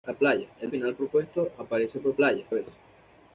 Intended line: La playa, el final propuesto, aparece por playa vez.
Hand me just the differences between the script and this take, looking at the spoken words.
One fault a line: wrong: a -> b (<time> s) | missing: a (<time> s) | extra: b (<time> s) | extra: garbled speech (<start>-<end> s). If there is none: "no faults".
no faults